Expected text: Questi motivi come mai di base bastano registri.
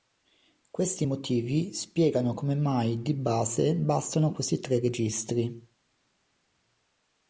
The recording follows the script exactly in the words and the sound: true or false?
false